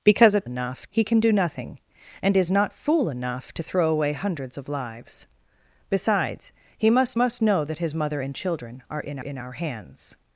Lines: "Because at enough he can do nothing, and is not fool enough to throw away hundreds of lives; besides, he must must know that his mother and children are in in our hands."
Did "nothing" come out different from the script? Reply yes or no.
no